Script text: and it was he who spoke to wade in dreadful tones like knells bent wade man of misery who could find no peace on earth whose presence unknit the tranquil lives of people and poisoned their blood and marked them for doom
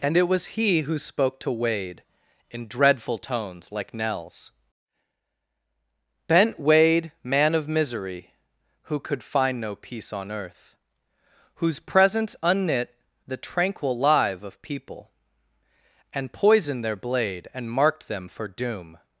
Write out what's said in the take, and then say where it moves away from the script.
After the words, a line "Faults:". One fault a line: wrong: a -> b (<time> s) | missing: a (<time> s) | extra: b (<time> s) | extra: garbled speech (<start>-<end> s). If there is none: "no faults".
and it was he who spoke to wade in dreadful tones like knells bent wade man of misery who could find no peace on earth whose presence unknit the tranquil live of people and poisoned their blade and marked them for doom
Faults:
wrong: lives -> live (13.9 s)
wrong: blood -> blade (16.9 s)